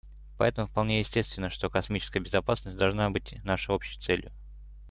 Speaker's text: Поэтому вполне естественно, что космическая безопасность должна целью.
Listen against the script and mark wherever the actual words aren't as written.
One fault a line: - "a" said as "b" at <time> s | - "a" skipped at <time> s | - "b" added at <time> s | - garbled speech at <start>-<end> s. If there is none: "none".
- "быть нашей общей" added at 3.1 s